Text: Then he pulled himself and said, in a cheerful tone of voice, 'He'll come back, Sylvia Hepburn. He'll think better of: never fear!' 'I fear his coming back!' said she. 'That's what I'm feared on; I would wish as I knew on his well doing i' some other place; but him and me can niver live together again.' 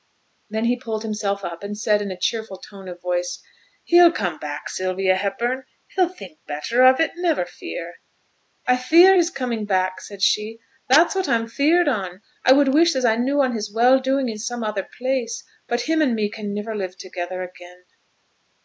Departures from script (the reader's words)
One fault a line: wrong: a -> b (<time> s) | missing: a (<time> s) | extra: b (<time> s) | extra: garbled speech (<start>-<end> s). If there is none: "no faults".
extra: up (1.4 s)
extra: it (7.0 s)